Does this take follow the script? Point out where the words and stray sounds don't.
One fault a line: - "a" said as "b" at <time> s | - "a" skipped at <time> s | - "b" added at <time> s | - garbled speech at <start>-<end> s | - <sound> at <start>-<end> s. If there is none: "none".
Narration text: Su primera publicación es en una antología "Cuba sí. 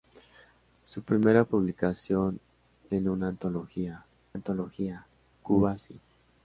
- "es" skipped at 2.4 s
- "antología" added at 4.3 s